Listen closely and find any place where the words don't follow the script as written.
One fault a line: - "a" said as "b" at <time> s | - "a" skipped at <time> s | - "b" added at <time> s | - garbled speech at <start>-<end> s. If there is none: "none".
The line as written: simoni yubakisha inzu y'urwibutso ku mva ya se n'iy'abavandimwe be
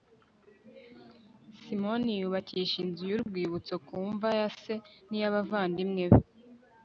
none